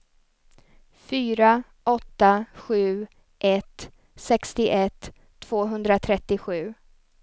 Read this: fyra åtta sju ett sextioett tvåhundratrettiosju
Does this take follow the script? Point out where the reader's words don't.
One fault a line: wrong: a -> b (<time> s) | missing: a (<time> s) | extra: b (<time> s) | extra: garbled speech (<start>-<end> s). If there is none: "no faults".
no faults